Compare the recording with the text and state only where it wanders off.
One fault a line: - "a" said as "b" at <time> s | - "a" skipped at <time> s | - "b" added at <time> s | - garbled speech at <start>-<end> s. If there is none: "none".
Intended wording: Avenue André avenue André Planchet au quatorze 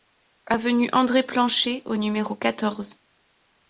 - "avenue André" skipped at 1.2 s
- "numéro" added at 1.9 s